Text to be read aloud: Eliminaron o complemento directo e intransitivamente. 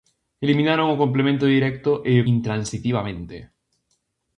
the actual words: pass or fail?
pass